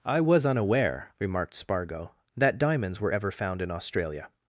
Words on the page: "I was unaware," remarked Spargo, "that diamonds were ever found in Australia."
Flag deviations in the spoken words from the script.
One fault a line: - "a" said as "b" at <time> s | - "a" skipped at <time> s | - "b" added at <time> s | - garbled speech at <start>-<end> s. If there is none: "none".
none